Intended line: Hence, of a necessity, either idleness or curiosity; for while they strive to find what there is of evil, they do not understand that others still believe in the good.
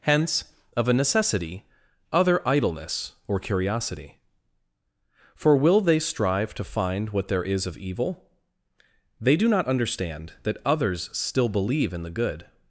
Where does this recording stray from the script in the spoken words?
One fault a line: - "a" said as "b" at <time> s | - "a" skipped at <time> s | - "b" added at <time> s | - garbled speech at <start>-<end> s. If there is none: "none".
- "either" said as "other" at 2.1 s
- "while" said as "will" at 5.5 s